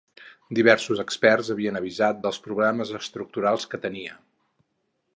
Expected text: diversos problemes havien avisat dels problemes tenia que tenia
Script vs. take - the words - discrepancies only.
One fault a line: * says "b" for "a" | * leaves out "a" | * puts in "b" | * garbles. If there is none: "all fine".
* says "experts" for "problemes"
* says "estructurals" for "tenia"